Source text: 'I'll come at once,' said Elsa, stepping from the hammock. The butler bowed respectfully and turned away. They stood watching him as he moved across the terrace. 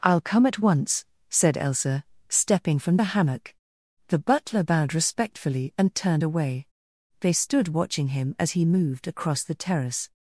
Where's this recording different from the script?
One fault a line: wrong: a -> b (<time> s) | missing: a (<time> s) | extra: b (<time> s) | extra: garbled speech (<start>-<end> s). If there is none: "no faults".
no faults